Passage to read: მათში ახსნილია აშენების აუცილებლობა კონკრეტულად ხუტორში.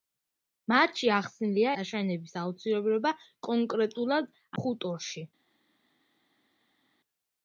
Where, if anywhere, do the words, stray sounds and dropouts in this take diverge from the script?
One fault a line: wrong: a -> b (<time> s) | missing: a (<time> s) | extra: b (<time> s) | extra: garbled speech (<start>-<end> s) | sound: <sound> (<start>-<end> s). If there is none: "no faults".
no faults